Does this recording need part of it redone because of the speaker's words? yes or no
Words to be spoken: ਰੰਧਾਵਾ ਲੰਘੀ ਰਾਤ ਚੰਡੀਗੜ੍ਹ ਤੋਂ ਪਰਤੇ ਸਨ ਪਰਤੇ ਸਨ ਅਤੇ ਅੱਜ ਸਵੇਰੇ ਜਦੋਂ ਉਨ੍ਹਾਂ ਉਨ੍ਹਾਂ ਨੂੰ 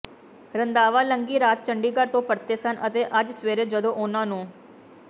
yes